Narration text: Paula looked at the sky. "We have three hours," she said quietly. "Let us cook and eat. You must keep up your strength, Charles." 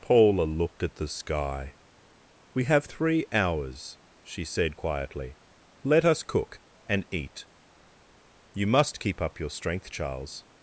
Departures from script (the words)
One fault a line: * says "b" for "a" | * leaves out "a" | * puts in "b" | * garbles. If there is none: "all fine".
all fine